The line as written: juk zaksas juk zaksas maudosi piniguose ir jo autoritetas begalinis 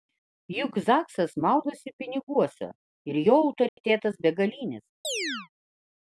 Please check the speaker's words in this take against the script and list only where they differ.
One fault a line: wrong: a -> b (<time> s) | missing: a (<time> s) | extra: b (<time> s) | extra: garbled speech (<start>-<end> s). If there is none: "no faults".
missing: juk zaksas (1.3 s)